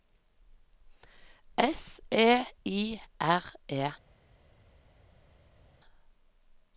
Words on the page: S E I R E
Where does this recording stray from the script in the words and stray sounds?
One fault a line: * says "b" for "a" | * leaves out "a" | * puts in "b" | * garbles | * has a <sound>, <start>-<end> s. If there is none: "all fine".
all fine